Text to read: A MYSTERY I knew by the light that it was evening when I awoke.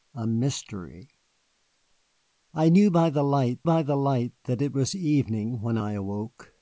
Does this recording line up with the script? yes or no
no